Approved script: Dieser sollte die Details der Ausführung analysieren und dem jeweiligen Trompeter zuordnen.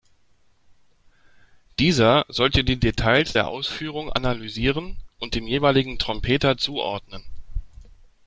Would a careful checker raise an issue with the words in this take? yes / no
no